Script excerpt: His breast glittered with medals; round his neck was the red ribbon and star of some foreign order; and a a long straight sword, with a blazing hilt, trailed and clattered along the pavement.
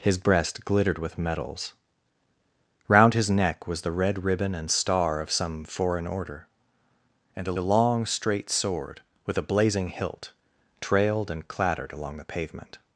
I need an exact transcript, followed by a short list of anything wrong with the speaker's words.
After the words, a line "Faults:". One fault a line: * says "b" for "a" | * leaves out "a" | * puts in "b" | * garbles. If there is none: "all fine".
His breast glittered with medals; round his neck was the red ribbon and star of some foreign order; and a a long straight sword, with a blazing hilt, trailed and clattered along the pavement.
Faults:
all fine